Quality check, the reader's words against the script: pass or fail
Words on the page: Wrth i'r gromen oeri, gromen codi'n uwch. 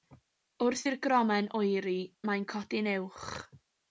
fail